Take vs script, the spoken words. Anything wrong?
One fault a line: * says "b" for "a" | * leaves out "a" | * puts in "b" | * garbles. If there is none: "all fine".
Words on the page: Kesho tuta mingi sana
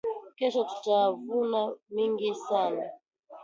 * puts in "vuna"